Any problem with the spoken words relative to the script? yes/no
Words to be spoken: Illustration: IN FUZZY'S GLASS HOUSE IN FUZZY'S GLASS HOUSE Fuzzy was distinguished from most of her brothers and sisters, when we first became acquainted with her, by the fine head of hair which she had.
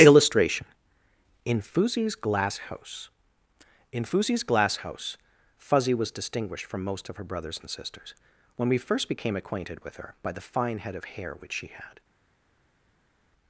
no